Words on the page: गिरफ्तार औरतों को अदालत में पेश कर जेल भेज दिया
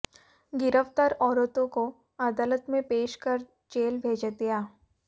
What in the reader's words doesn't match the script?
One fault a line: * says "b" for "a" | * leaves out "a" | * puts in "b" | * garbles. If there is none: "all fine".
all fine